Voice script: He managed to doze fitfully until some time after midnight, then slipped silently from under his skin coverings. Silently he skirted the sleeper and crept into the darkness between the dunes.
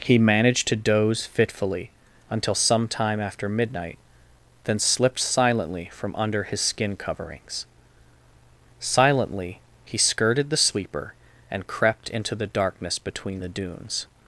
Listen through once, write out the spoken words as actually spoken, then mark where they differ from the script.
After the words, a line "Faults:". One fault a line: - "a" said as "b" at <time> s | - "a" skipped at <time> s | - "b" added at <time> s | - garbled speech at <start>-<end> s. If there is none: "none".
He managed to doze fitfully until some time after midnight, then slipped silently from under his skin coverings. Silently he skirted the sleeper and crept into the darkness between the dunes.
Faults:
none